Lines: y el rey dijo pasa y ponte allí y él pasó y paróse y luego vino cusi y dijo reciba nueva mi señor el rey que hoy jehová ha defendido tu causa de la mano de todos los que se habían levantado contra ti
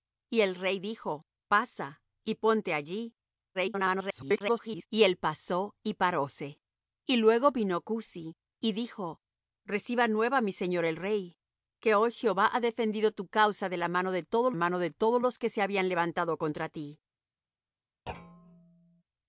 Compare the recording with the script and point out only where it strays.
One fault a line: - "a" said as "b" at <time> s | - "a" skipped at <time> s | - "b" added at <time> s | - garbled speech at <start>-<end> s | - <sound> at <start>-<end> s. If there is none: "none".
- garbled speech at 3.5-4.9 s
- "mano de todos" added at 14.5 s
- thud at 18.1-19.0 s